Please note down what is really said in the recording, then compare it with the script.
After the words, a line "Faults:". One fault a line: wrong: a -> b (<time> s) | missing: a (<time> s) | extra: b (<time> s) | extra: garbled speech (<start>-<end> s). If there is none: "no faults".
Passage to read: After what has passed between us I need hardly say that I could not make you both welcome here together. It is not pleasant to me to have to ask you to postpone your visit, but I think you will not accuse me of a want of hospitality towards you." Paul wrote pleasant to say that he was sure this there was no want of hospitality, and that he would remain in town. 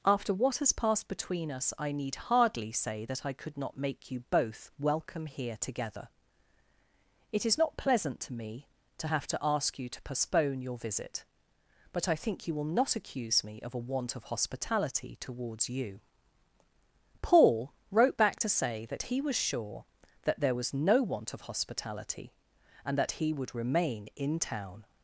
After what has passed between us I need hardly say that I could not make you both welcome here together. It is not pleasant to me to have to ask you to postpone your visit, but I think you will not accuse me of a want of hospitality towards you." Paul wrote back to say that he was sure that there was no want of hospitality, and that he would remain in town.
Faults:
wrong: pleasant -> back (18.2 s)
wrong: this -> that (20.2 s)